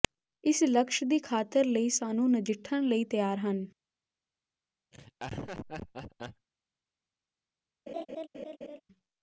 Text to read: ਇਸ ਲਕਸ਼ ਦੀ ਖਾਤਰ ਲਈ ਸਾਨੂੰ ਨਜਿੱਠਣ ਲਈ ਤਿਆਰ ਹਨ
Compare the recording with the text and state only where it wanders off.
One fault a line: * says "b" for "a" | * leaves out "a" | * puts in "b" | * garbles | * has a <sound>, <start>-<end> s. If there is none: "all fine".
* has a laugh, 4.9-6.5 s
* has a laugh, 7.9-8.8 s